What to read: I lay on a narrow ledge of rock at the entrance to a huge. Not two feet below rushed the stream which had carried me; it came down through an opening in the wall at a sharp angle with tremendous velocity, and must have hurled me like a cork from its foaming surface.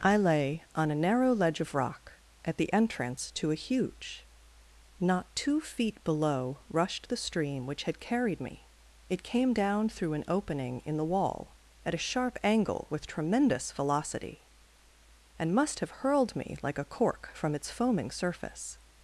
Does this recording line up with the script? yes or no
yes